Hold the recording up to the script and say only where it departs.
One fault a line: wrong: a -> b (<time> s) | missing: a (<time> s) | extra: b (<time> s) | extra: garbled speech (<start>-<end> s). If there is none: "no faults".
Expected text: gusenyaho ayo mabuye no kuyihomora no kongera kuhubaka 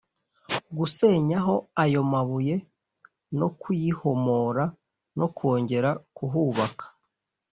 no faults